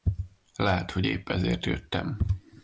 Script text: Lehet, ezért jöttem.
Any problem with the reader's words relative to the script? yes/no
yes